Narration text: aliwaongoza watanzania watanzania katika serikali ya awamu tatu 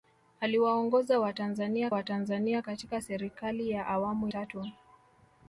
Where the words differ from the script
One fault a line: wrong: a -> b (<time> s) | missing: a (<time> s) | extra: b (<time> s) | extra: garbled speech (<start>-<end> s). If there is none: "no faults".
no faults